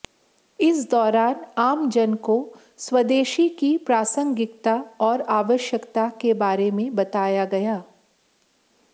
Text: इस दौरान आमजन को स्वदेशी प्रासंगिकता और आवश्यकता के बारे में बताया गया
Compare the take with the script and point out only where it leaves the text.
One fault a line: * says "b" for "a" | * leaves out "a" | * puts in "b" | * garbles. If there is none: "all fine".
* puts in "की"